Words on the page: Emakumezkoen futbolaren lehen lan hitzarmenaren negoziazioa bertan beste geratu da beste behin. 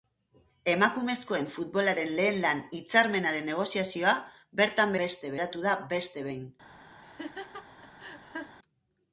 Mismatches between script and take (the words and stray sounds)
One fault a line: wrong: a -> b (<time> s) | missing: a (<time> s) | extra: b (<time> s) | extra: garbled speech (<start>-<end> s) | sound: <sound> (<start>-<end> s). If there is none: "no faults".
sound: laugh (7.0-8.6 s)